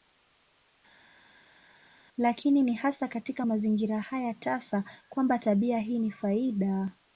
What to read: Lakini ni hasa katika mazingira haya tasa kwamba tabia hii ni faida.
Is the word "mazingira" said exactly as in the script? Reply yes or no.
yes